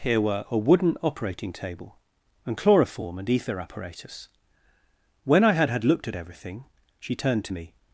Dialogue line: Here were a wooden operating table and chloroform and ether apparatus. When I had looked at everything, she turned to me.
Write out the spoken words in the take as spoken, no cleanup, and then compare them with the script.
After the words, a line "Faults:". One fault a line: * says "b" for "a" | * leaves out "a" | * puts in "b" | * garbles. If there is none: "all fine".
Here were a wooden operating table and chloroform and ether apparatus. When I had had looked at everything, she turned to me.
Faults:
* puts in "had"